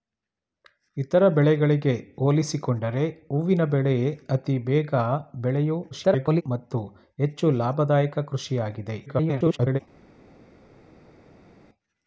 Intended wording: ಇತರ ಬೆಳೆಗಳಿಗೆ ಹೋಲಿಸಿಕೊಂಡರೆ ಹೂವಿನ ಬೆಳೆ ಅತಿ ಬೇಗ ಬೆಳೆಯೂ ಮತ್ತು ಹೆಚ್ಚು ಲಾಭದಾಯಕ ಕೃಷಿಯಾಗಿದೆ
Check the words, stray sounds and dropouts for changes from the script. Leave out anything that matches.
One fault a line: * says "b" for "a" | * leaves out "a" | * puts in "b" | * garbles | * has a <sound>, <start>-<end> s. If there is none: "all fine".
* garbles
* garbles